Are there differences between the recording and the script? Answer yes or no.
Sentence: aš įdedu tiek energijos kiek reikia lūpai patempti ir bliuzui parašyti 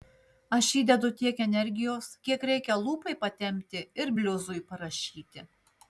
no